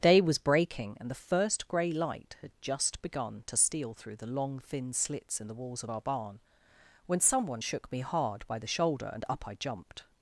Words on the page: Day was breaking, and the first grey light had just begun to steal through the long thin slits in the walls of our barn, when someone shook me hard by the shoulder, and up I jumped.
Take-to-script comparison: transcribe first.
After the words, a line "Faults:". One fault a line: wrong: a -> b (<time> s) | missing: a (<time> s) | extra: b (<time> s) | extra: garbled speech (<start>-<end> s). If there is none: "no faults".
Day was breaking, and the first grey light had just begun to steal through the long thin slits in the walls of our barn, when someone shook me hard by the shoulder, and up I jumped.
Faults:
no faults